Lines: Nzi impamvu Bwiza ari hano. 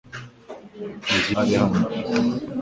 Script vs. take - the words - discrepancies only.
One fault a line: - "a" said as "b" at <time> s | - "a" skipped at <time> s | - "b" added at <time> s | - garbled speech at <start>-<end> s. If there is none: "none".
- "impamvu Bwiza" skipped at 1.3 s